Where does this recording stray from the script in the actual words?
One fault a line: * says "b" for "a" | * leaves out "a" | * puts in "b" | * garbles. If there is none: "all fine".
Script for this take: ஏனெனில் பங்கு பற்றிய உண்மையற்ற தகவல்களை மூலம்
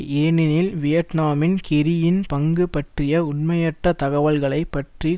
* puts in "வியட்நாமின் கெர்ரியின்"
* says "பற்றி" for "மூலம்"